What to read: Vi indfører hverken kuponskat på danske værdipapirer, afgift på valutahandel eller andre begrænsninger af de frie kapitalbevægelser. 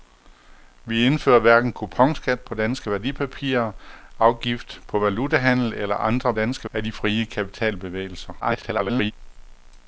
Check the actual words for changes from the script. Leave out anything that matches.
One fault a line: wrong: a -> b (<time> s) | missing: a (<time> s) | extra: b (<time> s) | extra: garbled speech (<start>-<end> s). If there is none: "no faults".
wrong: begrænsninger -> danske (6.3 s)
extra: garbled speech (8.4-9.1 s)